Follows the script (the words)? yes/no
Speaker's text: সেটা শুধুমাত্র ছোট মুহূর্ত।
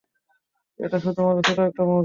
no